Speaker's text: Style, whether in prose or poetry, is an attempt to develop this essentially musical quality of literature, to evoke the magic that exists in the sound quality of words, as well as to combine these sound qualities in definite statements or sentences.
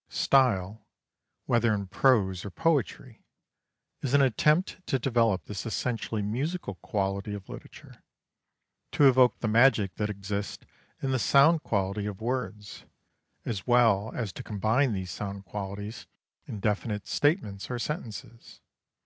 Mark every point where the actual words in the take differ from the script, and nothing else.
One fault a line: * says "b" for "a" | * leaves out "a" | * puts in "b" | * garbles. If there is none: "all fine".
all fine